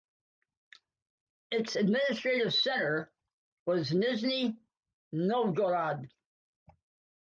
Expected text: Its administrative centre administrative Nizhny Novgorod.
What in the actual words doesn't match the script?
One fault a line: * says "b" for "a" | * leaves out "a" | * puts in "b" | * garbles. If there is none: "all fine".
* says "was" for "administrative"